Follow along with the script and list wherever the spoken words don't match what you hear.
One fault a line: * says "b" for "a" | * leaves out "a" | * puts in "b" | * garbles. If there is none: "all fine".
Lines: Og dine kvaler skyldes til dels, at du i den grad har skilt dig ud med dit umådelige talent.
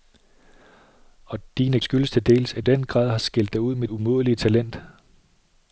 * leaves out "kvaler"
* leaves out "du"
* leaves out "dit"